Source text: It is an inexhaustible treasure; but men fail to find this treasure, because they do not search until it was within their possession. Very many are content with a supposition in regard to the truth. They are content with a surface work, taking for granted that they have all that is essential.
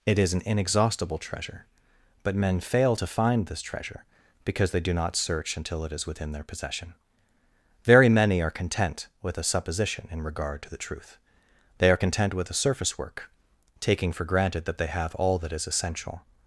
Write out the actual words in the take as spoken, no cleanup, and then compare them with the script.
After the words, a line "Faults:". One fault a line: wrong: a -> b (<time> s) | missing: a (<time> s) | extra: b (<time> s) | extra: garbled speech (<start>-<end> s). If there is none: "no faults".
It is an inexhaustible treasure; but men fail to find this treasure, because they do not search until it is within their possession. Very many are content with a supposition in regard to the truth. They are content with a surface work, taking for granted that they have all that is essential.
Faults:
wrong: was -> is (5.9 s)